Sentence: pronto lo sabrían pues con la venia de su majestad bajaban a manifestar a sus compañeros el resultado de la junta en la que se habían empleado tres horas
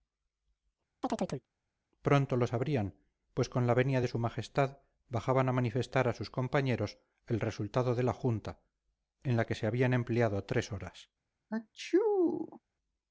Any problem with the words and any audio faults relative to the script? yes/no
yes